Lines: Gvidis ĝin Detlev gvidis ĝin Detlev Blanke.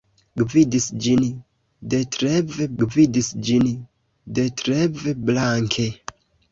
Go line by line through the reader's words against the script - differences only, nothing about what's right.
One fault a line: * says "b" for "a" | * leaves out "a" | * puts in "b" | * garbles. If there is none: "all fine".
all fine